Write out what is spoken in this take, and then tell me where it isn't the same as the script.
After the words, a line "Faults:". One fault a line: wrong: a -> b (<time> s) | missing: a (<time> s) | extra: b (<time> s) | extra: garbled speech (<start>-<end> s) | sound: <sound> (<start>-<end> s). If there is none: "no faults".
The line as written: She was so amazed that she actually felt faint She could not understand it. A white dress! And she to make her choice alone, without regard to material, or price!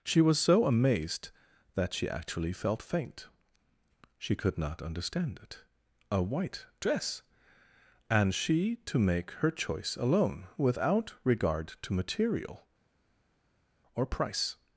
She was so amazed that she actually felt faint She could not understand it. A white dress! And she to make her choice alone, without regard to material, or price!
Faults:
no faults